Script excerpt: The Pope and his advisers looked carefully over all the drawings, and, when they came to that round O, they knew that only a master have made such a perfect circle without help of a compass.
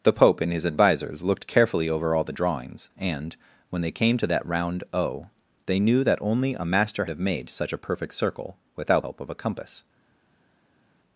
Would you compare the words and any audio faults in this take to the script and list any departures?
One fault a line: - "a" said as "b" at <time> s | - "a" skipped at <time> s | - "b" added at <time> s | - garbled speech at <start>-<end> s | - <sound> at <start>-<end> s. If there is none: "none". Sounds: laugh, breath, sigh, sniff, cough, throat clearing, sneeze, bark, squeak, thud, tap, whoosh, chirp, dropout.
none